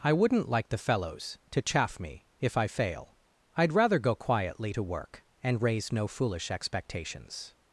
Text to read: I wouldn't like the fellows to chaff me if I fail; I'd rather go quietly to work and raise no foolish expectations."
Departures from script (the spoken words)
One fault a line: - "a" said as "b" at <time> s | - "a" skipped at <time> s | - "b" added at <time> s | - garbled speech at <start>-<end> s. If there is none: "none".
none